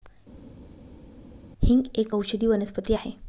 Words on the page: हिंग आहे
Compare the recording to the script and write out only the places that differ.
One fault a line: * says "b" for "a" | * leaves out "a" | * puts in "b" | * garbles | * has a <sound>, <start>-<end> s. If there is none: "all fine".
* puts in "एक औषधी वनस्पती"